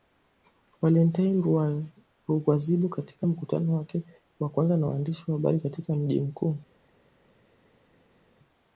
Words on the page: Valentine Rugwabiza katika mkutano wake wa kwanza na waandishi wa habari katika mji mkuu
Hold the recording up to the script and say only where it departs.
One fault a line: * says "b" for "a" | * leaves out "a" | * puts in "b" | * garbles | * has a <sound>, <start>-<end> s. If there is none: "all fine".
all fine